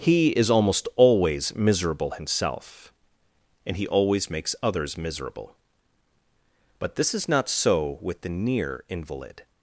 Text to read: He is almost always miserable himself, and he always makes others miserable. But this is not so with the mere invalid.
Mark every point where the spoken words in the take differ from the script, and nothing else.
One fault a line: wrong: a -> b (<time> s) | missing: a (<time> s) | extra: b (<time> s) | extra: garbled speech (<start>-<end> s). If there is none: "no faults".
wrong: mere -> near (8.3 s)